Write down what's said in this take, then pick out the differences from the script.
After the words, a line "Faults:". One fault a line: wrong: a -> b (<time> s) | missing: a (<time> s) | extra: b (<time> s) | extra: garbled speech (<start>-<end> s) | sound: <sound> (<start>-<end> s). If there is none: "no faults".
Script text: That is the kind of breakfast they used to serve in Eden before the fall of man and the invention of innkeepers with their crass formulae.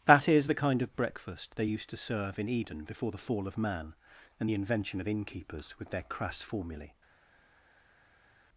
That is the kind of breakfast they used to serve in Eden before the fall of man and the invention of innkeepers with their crass formulae.
Faults:
no faults